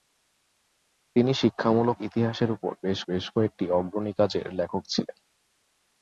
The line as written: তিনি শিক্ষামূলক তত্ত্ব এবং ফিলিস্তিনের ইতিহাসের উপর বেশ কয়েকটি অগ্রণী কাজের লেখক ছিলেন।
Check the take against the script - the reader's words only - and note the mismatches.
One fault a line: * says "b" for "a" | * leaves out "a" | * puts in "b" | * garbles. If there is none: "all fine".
* leaves out "তত্ত্ব এবং ফিলিস্তিনের"
* puts in "বেশ"